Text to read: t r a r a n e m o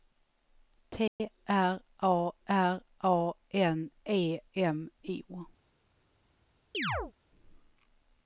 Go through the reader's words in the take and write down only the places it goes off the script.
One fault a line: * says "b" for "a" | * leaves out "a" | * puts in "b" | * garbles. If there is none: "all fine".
all fine